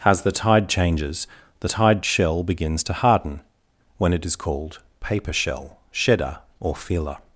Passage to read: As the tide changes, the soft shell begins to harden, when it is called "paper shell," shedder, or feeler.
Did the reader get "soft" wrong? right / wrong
wrong